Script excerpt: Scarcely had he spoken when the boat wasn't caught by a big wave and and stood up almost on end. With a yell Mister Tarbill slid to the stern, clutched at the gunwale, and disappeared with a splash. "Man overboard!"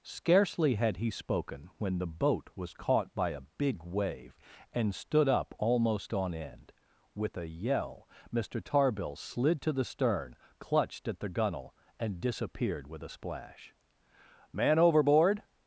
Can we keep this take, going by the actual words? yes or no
no